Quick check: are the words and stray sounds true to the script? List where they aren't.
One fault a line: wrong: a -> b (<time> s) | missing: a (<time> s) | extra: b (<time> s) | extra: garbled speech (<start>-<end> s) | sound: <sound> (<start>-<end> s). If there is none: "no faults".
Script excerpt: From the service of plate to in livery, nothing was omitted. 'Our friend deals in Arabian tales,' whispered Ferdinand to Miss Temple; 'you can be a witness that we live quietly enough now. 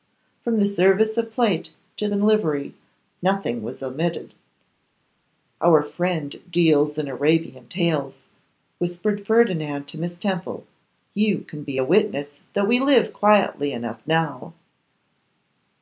no faults